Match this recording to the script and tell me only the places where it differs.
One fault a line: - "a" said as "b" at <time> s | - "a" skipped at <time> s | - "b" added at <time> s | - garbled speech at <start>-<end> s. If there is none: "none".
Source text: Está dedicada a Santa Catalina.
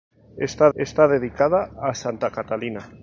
- "está" added at 0.8 s